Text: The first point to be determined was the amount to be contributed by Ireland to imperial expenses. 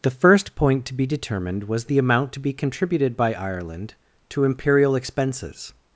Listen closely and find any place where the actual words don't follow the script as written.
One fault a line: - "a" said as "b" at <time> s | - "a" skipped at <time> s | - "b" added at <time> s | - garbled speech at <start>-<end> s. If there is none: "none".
none